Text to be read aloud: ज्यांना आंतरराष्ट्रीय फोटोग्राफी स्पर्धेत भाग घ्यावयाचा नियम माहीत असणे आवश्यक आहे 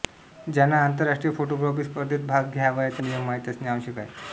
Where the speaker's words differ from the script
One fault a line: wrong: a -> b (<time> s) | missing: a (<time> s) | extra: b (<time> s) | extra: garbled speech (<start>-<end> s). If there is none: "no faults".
no faults